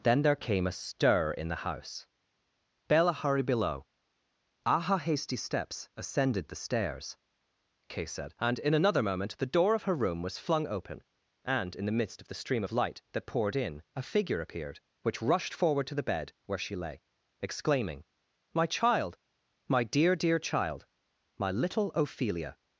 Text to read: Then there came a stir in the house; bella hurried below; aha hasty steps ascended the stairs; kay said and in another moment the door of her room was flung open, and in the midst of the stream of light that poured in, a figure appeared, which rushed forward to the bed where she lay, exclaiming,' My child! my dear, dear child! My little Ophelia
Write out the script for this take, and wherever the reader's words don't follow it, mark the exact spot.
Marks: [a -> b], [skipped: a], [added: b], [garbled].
Then there came a stir in the house; bella hurried below; aha hasty steps ascended the stairs; kay said and in another moment the door of her room was flung open, and in the midst of the stream of light that poured in, a figure appeared, which rushed forward to the bed where she lay, exclaiming,' My child! my dear, dear child! My little Ophelia